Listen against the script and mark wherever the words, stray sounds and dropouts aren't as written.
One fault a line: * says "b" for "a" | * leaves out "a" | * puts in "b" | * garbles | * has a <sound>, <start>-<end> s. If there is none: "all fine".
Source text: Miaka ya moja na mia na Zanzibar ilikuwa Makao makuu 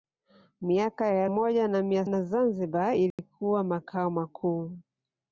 * has a dropout, 3.1-3.2 s